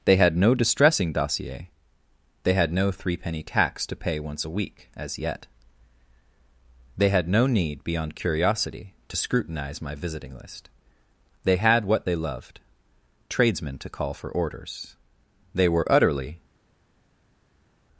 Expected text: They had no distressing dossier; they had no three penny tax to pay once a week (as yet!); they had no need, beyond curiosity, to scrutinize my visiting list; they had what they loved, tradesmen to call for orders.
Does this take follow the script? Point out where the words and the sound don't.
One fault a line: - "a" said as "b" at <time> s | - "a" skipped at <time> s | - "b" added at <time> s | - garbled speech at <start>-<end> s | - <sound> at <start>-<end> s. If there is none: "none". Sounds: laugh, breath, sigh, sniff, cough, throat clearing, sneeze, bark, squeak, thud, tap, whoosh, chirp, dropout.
- "They were utterly" added at 15.5 s